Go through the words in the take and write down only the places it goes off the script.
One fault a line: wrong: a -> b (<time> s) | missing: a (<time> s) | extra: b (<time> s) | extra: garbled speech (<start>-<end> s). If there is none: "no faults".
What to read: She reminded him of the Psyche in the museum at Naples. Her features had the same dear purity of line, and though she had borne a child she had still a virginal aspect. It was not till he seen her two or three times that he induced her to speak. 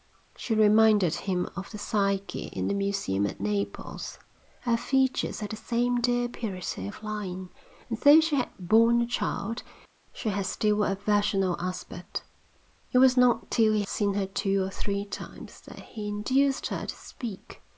no faults